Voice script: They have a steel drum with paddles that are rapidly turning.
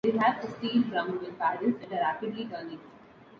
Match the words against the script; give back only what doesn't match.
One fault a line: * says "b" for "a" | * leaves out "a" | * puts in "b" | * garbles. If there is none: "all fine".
all fine